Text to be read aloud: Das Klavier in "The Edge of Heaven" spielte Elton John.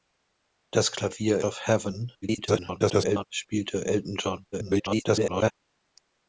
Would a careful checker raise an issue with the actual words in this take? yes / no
yes